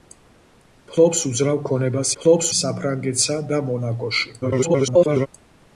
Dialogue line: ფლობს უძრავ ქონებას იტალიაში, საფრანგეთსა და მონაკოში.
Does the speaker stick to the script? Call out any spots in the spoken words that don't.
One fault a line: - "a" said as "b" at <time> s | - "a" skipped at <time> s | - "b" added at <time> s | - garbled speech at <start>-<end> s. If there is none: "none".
- "იტალიაში" said as "ფლობს" at 2.2 s
- garbled speech at 4.4-5.3 s